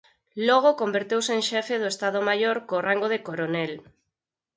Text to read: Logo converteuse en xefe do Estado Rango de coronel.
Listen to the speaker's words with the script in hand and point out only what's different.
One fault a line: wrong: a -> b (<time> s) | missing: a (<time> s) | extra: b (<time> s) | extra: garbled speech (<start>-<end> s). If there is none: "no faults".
extra: Maior co (2.3 s)